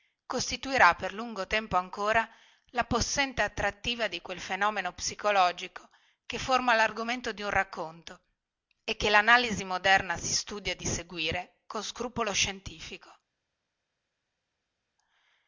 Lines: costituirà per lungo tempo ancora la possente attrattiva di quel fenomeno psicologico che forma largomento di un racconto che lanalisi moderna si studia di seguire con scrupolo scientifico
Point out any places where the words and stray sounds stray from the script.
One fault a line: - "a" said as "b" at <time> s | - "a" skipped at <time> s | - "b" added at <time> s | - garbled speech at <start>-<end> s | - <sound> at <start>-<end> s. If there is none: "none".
- "e" added at 8.8 s